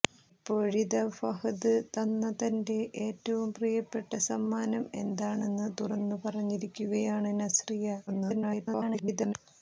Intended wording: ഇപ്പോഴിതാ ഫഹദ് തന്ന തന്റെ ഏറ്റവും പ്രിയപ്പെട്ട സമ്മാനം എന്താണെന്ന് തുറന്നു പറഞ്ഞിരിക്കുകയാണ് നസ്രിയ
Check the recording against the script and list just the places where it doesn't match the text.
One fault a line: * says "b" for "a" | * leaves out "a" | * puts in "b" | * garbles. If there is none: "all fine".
* garbles